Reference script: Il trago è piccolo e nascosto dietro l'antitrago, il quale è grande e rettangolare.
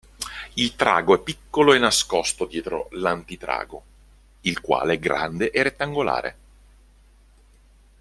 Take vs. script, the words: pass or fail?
pass